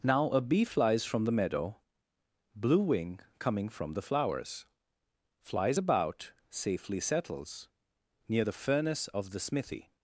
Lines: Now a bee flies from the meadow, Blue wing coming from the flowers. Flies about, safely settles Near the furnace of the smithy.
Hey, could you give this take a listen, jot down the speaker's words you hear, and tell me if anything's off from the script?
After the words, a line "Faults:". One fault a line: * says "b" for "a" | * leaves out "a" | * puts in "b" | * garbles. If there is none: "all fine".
Now a bee flies from the meadow, Blue wing coming from the flowers. Flies about, safely settles Near the furnace of the smithy.
Faults:
all fine